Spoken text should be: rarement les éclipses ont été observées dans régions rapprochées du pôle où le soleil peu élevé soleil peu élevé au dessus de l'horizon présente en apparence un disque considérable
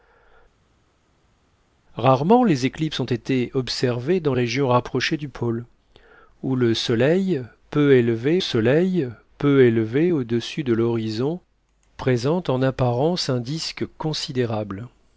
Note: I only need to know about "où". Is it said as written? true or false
true